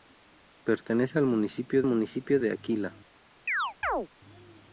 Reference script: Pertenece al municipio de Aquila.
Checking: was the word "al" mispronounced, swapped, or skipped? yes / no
no